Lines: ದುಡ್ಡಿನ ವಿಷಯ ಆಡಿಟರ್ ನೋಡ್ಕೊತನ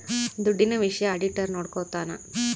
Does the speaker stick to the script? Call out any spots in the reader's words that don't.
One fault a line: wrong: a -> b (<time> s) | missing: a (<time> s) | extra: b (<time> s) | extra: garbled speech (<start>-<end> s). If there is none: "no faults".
no faults